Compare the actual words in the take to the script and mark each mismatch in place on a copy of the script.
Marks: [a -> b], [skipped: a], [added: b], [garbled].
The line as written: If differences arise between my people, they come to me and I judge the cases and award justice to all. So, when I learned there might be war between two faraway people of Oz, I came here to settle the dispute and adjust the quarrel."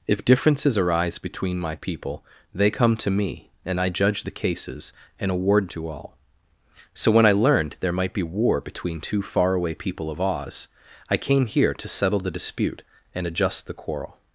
If differences arise between my people, they come to me and I judge the cases and award [skipped: justice] to all. So, when I learned there might be war between two faraway people of Oz, I came here to settle the dispute and adjust the quarrel."